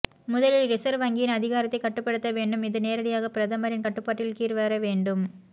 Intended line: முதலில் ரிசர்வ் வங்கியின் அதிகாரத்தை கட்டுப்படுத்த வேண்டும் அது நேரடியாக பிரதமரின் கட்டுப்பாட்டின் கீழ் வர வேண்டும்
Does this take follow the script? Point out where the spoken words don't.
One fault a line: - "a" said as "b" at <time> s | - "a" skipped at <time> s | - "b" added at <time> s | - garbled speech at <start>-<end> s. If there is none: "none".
- "அது" said as "இது" at 2.6 s